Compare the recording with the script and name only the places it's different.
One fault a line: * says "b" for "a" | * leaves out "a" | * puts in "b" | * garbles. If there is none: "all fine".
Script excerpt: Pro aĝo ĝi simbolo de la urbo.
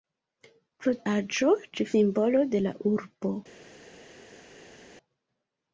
all fine